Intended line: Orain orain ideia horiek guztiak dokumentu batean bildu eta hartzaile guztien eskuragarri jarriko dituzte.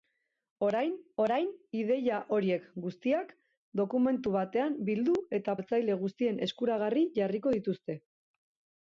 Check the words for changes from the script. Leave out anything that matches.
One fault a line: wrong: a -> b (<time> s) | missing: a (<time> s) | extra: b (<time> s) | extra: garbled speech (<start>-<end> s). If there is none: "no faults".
no faults